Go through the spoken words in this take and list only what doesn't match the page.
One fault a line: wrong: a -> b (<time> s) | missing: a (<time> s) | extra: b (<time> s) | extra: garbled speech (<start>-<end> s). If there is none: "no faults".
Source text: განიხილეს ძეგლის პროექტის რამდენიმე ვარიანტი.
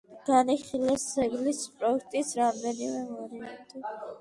no faults